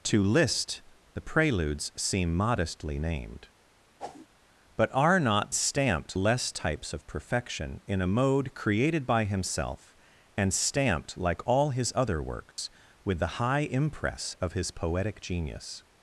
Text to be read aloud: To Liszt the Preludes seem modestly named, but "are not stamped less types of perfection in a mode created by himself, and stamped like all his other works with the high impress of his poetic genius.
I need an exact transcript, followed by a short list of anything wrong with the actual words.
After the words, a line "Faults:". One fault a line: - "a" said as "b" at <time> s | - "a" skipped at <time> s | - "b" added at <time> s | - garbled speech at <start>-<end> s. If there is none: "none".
To Liszt the Preludes seem modestly named, but "are not stamped less types of perfection in a mode created by himself, and stamped like all his other works with the high impress of his poetic genius.
Faults:
none